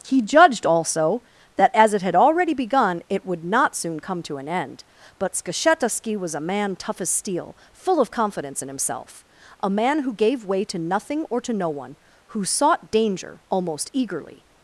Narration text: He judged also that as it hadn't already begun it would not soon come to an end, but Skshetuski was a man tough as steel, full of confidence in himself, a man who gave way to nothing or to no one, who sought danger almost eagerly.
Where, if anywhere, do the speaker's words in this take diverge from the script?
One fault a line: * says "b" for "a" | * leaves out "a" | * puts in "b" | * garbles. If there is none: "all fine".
* says "had" for "hadn't"